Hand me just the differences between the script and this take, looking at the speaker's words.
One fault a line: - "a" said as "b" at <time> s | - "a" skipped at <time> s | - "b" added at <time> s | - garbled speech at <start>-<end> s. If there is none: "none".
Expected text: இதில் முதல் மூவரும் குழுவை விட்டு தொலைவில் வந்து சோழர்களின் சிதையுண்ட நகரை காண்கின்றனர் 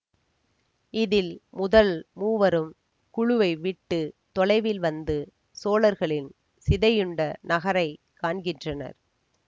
none